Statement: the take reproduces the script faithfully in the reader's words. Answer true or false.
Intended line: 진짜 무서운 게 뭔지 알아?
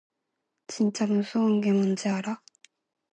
true